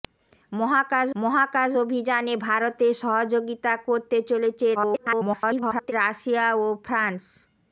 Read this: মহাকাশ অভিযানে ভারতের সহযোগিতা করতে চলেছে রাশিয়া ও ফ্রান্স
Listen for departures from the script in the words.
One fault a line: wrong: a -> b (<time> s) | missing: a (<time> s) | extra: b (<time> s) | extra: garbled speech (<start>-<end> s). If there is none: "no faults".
extra: মহাকাশ (1.1 s)
extra: garbled speech (4.7-5.9 s)